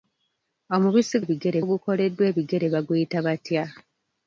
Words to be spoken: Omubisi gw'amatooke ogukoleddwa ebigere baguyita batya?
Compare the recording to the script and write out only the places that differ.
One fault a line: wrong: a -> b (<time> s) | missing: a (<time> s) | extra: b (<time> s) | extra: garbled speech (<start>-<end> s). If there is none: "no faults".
wrong: gw'amatooke -> ebigere (1.2 s)